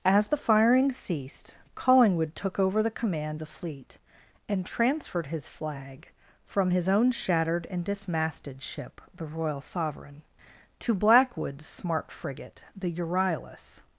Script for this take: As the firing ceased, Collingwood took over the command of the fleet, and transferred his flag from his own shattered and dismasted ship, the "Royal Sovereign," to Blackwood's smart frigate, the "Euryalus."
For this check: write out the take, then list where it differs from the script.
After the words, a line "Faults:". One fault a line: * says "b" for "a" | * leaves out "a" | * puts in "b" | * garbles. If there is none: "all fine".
As the firing ceased, Collingwood took over the command the fleet, and transferred his flag from his own shattered and dismasted ship, the "Royal Sovereign," to Blackwood's smart frigate, the "Euryalus."
Faults:
* leaves out "of"